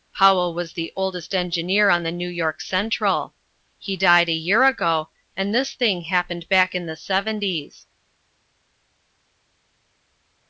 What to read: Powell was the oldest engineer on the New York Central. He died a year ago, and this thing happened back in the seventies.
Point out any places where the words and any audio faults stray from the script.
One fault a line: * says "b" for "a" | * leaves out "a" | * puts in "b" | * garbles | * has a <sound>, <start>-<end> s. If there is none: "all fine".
all fine